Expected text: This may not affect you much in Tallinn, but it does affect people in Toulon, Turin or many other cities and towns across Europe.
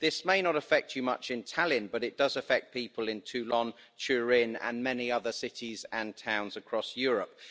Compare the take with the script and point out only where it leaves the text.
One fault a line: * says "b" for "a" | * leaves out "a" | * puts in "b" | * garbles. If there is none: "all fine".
* says "and" for "or"